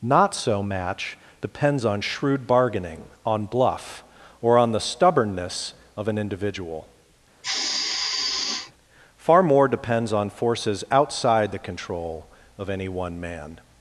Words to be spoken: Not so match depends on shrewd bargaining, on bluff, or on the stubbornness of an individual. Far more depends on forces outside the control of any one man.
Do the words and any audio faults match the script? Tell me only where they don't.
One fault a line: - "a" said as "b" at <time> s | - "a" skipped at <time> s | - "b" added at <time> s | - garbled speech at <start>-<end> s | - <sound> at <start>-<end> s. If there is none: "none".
- sigh at 7.4-8.7 s